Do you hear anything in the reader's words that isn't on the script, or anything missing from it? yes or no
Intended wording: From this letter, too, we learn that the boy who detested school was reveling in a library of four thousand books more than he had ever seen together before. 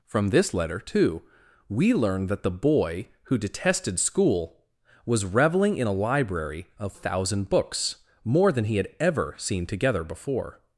yes